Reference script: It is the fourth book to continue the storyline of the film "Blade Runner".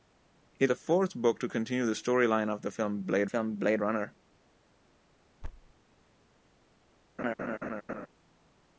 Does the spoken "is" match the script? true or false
false